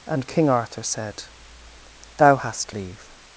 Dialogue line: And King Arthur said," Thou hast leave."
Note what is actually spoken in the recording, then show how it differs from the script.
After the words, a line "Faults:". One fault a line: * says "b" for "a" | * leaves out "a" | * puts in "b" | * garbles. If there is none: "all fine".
And King Arthur said," Thou hast leave."
Faults:
all fine